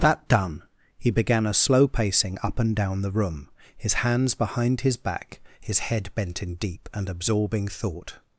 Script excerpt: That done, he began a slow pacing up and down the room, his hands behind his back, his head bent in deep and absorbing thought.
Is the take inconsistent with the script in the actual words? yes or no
no